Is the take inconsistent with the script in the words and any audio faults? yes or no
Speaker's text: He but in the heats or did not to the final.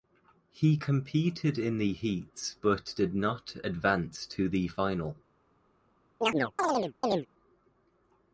yes